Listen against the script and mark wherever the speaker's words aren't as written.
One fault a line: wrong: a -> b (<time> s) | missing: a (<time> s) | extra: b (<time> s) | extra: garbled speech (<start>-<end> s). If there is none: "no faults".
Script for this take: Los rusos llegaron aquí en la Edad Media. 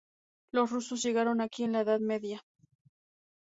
no faults